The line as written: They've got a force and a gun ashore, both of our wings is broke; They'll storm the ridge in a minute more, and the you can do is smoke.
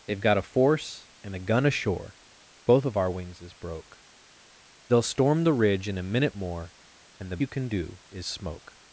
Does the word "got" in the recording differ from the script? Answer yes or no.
no